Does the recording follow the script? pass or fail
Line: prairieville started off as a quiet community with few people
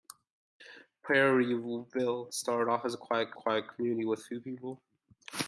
fail